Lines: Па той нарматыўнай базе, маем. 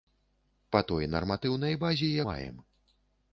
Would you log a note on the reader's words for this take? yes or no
no